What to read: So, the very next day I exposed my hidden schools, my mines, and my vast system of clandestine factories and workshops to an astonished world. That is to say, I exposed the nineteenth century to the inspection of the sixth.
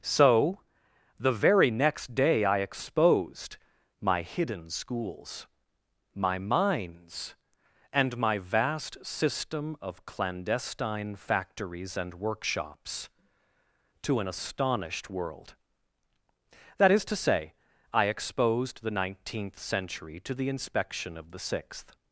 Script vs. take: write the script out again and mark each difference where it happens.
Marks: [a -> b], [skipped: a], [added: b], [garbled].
So, the very next day I exposed my hidden schools, my mines, and my vast system of clandestine factories and workshops to an astonished world. That is to say, I exposed the nineteenth century to the inspection of the sixth.